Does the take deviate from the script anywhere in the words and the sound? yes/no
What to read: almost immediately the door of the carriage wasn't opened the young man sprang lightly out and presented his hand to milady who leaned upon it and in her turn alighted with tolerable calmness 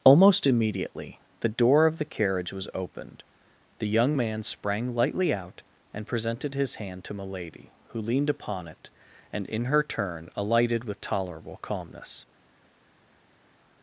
yes